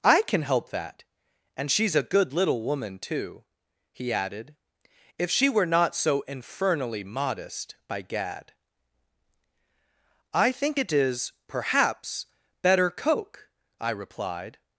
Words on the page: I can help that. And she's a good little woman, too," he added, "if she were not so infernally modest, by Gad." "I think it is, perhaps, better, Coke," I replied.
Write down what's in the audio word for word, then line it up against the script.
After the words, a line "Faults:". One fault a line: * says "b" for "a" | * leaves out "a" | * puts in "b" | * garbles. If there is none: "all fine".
I can help that. And she's a good little woman, too," he added, "if she were not so infernally modest, by Gad." "I think it is, perhaps, better, Coke," I replied.
Faults:
all fine